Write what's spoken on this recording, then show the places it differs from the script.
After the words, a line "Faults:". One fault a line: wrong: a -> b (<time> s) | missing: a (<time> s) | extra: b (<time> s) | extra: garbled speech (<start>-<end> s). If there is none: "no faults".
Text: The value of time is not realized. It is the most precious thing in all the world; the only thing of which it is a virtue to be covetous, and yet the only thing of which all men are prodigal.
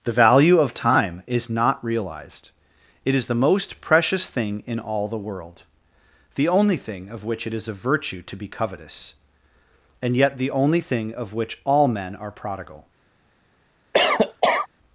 The value of time is not realized. It is the most precious thing in all the world; the only thing of which it is a virtue to be covetous, and yet the only thing of which all men are prodigal.
Faults:
no faults